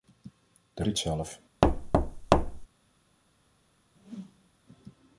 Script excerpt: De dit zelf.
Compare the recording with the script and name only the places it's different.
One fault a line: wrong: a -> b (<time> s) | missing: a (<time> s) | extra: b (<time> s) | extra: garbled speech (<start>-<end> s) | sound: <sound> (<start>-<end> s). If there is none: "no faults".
sound: thud (1.6-2.7 s)
sound: whoosh (3.9-4.5 s)